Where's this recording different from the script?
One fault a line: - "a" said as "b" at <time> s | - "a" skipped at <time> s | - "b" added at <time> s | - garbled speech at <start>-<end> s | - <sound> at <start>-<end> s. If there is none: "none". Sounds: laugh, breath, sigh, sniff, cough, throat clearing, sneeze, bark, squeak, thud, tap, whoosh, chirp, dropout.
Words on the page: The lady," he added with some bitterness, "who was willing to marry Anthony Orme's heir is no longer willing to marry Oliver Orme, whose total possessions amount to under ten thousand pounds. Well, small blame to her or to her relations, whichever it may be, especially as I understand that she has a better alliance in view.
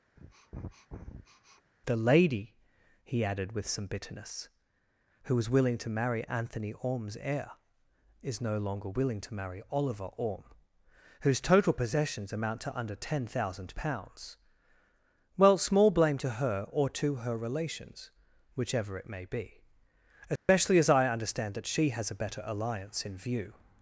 - sniff at 0.2-1.7 s
- dropout at 20.4-20.5 s